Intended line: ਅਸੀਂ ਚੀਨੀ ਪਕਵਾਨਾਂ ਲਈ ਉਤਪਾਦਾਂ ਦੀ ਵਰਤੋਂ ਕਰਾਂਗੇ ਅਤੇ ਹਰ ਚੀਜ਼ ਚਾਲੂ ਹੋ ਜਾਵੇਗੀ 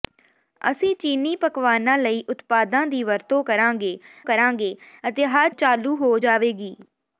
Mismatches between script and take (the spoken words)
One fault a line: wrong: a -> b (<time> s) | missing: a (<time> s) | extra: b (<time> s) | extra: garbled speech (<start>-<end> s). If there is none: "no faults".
extra: ਕਰਾਂਗੇ (4.2 s)
missing: ਚੀਜ਼ (5.5 s)